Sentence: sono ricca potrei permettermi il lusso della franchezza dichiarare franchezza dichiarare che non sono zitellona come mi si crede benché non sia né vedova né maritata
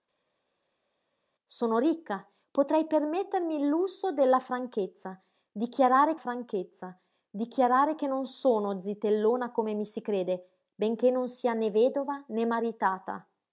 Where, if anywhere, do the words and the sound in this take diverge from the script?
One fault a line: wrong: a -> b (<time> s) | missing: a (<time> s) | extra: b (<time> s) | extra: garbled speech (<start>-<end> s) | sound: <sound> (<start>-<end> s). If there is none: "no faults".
no faults